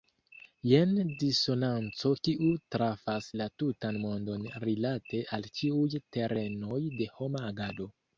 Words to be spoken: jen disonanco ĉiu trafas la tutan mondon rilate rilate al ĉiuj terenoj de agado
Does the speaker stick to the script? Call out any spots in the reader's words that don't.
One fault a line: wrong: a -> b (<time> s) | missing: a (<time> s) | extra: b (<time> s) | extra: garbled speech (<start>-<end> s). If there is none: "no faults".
wrong: ĉiu -> kiu (2.3 s)
missing: rilate (5.2 s)
extra: homa (7.2 s)